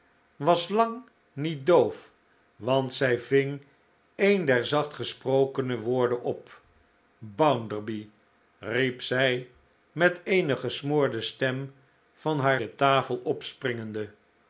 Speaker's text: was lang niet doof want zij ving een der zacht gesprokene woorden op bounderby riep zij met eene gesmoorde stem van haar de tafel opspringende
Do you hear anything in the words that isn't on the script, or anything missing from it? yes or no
no